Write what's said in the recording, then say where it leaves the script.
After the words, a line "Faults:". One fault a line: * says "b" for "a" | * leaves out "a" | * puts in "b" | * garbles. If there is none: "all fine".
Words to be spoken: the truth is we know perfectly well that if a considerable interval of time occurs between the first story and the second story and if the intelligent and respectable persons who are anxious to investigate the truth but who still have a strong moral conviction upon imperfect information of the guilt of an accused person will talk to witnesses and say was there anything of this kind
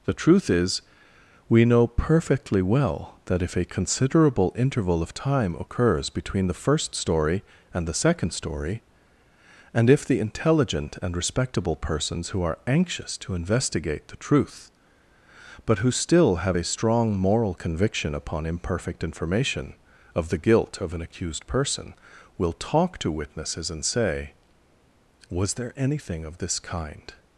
the truth is we know perfectly well that if a considerable interval of time occurs between the first story and the second story and if the intelligent and respectable persons who are anxious to investigate the truth but who still have a strong moral conviction upon imperfect information of the guilt of an accused person will talk to witnesses and say was there anything of this kind
Faults:
all fine